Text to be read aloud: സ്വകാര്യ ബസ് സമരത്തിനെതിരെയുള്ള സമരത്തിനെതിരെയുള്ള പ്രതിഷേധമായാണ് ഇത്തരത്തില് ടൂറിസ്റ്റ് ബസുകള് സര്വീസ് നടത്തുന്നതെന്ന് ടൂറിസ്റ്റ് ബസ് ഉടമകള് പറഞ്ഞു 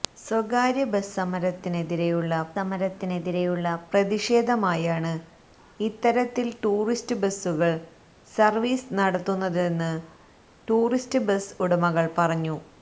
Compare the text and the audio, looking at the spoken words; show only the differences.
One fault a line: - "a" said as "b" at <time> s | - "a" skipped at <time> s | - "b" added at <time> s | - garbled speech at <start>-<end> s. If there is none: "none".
none